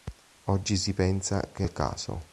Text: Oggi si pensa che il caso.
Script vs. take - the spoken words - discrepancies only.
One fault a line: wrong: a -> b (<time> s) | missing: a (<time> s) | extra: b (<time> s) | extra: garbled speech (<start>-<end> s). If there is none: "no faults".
no faults